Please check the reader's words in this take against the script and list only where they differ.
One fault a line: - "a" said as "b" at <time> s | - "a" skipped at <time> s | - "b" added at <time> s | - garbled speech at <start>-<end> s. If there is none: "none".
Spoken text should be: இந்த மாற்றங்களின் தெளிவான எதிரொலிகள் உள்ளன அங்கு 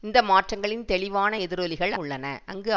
none